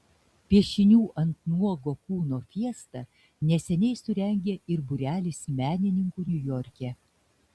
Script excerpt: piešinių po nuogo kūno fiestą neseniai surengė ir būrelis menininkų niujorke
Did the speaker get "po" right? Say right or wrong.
wrong